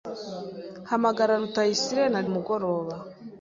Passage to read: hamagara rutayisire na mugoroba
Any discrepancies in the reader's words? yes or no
no